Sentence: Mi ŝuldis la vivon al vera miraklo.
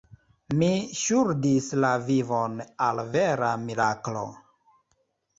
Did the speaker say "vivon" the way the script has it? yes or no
yes